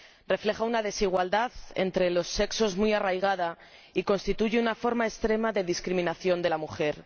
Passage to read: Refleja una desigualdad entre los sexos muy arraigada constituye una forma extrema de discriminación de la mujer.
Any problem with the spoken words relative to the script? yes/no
yes